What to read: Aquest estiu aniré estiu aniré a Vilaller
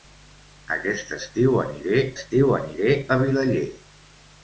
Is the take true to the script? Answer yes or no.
yes